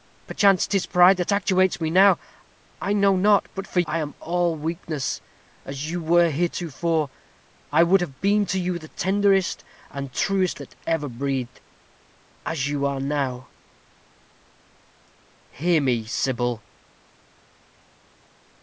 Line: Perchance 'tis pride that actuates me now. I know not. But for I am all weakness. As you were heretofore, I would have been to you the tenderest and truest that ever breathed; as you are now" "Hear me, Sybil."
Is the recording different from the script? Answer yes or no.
no